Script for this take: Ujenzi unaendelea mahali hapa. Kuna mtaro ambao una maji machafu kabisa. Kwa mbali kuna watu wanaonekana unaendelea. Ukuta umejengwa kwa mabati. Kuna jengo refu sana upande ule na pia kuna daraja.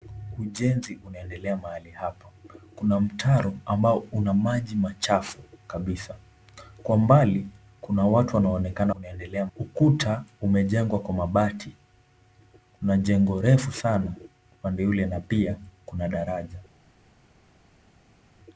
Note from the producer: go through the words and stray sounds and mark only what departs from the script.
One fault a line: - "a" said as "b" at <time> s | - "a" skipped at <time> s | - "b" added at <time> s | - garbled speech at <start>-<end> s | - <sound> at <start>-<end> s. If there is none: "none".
none